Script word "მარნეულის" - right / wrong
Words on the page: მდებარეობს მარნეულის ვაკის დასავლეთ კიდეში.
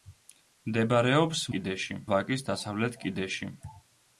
wrong